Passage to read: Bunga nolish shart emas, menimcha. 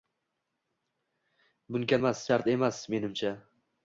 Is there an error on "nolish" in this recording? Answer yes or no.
yes